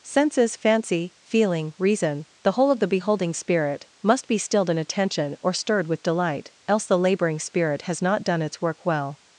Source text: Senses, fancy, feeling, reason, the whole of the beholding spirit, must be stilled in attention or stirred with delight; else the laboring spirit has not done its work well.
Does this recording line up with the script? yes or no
yes